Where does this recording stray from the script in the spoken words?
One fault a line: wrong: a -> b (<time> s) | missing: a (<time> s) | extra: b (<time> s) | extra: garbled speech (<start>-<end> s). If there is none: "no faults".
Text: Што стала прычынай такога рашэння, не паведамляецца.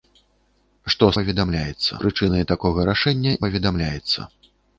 wrong: стала -> паведамляецца (1.2 s)
missing: не (3.3 s)